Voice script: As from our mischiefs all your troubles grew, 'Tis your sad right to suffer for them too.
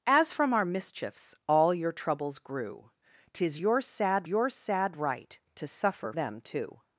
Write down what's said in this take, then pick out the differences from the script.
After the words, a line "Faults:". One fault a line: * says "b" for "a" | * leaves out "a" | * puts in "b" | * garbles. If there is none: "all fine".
As from our mischiefs all your troubles grew, 'Tis your sad your sad right to suffer them too.
Faults:
* puts in "your sad"
* leaves out "for"